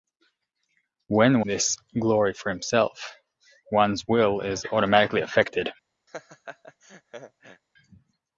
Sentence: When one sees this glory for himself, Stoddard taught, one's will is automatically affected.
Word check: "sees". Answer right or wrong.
wrong